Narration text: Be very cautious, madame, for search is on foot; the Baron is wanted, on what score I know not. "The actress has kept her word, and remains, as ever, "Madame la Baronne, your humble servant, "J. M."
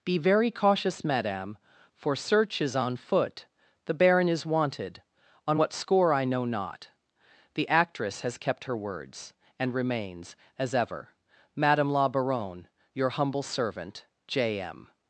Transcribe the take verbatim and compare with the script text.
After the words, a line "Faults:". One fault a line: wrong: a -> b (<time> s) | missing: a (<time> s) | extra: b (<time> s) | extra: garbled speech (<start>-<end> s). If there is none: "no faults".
Be very cautious, madame, for search is on foot; the Baron is wanted, on what score I know not. "The actress has kept her words, and remains, as ever, "Madame la Baronne, your humble servant, "J. M."
Faults:
wrong: word -> words (8.8 s)